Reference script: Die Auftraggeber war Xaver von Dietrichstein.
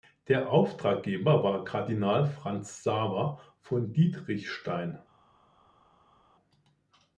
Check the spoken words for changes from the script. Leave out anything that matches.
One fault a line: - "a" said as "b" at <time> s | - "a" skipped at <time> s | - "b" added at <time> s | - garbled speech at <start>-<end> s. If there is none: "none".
- "Die" said as "Der" at 0.3 s
- "Kardinal Franz" added at 1.6 s